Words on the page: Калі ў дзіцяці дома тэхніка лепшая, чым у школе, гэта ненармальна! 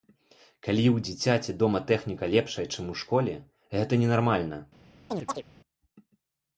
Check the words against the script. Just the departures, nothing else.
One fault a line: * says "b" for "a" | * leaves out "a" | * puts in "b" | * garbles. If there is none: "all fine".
all fine